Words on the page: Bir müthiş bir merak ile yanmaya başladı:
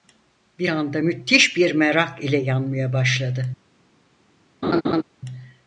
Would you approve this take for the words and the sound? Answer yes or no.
no